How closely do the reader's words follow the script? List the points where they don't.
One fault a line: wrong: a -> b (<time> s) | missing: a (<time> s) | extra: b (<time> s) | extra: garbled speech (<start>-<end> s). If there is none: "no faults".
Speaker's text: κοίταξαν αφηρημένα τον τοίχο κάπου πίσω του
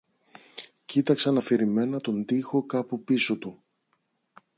no faults